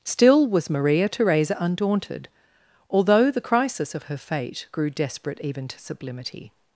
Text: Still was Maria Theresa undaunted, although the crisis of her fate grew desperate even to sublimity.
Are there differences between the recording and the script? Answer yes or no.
no